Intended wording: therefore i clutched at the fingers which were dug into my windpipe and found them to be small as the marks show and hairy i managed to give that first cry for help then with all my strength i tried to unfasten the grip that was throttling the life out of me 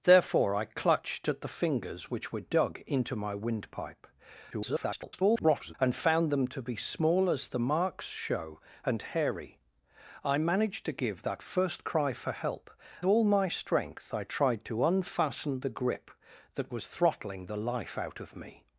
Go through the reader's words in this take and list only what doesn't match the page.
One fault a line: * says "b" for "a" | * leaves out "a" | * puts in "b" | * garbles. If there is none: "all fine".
* garbles
* leaves out "then with"